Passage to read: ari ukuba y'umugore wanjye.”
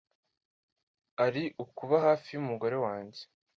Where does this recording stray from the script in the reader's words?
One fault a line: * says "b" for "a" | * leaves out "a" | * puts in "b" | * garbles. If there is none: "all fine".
* puts in "hafi"